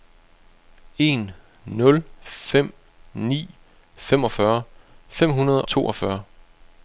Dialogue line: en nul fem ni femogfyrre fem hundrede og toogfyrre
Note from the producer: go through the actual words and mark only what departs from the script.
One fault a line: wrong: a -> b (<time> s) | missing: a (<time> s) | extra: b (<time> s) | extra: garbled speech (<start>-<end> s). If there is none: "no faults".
missing: og (5.7 s)